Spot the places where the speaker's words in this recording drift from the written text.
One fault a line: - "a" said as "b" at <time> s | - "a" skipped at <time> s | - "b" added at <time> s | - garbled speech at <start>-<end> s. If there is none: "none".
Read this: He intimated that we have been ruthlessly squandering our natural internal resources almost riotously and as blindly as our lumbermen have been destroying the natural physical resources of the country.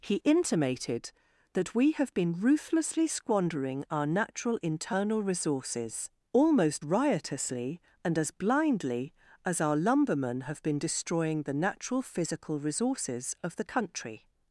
none